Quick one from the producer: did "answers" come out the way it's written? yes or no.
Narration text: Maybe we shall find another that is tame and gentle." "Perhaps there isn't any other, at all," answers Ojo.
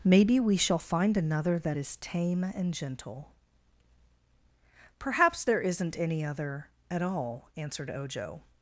no